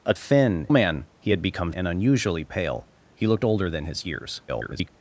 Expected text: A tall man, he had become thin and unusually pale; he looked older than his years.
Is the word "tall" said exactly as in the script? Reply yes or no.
no